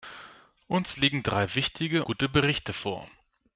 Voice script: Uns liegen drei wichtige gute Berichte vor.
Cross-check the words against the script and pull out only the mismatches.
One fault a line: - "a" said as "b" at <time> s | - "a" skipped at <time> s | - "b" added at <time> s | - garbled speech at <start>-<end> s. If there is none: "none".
none